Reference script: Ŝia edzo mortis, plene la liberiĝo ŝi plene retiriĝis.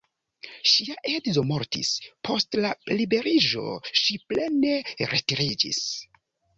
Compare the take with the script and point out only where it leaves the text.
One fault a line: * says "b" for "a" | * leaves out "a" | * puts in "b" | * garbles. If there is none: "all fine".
* says "post" for "plene"